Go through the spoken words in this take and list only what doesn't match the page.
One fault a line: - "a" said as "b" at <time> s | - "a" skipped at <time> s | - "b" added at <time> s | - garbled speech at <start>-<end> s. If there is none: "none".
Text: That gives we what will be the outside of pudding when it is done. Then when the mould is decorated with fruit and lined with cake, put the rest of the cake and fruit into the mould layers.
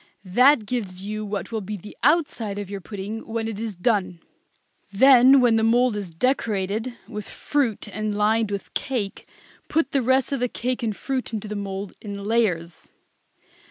- "we" said as "you" at 1.1 s
- "your" added at 2.7 s
- "in" added at 12.0 s